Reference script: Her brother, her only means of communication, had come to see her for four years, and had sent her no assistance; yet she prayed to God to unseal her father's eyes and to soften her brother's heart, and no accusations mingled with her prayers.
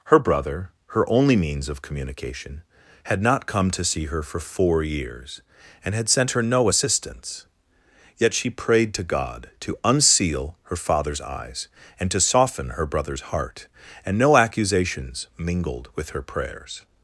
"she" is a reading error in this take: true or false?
false